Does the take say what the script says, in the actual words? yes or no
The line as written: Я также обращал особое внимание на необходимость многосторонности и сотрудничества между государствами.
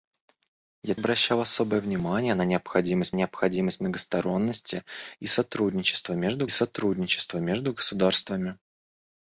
no